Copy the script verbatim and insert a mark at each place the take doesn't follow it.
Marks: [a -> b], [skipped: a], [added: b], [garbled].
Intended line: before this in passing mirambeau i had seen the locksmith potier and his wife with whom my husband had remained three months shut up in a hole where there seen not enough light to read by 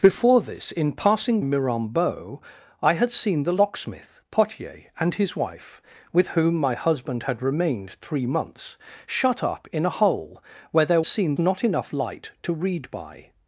before this in passing mirambeau i had seen the locksmith potier and his wife with whom my husband had remained three months shut up in a hole where there seen not enough light to read by